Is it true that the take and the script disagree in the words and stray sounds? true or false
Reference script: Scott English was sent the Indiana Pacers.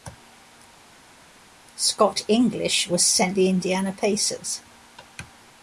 false